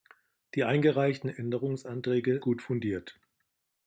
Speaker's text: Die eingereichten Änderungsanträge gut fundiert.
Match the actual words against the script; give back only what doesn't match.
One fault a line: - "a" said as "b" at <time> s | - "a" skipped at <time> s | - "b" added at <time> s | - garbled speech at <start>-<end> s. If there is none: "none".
none